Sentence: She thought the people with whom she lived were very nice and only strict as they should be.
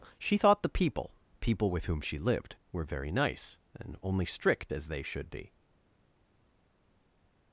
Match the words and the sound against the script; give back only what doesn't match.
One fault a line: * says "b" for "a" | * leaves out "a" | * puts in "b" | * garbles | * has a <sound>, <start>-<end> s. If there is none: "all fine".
* puts in "people"